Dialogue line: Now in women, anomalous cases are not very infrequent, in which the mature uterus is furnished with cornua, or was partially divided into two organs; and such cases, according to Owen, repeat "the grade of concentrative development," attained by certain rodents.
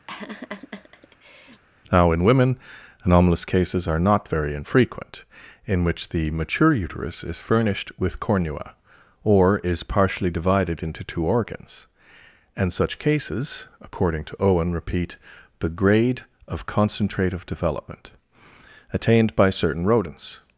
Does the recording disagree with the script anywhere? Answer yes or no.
yes